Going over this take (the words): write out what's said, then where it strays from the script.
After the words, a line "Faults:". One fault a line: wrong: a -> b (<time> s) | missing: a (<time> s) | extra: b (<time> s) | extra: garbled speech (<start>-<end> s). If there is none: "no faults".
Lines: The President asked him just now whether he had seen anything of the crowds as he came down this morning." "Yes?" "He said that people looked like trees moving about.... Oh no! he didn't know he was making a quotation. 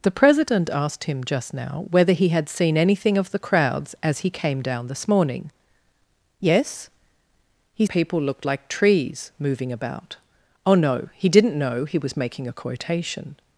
The President asked him just now whether he had seen anything of the crowds as he came down this morning." "Yes?" "He people looked like trees moving about.... Oh no! he didn't know he was making a quotation.
Faults:
missing: said that (7.8 s)